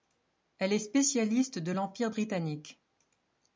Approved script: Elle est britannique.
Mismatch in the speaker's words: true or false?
true